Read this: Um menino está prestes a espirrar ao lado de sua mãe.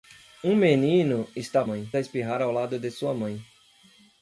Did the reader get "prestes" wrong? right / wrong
wrong